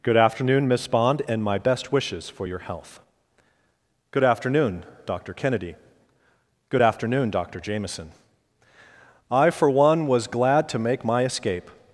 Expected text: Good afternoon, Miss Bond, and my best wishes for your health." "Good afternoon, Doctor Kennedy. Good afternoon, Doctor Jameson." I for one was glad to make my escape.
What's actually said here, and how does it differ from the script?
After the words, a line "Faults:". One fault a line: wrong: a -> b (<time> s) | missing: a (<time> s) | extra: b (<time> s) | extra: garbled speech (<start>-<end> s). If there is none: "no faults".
Good afternoon, Miss Bond, and my best wishes for your health." "Good afternoon, Doctor Kennedy. Good afternoon, Doctor Jameson." I for one was glad to make my escape.
Faults:
no faults